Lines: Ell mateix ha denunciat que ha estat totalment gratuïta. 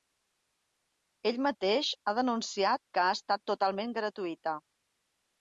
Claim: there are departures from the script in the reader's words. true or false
false